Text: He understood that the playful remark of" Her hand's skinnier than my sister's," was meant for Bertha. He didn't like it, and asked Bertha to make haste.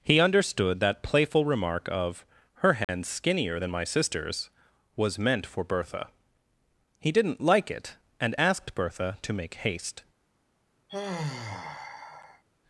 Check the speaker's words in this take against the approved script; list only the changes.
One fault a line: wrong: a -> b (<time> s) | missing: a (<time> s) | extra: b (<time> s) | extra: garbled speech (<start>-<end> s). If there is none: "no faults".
missing: the (1.0 s)